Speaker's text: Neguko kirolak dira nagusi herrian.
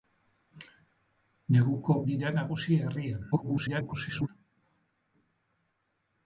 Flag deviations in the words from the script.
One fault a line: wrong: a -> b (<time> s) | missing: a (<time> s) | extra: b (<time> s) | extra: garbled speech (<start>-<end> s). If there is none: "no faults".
missing: kirolak (2.0 s)
extra: garbled speech (3.3-4.3 s)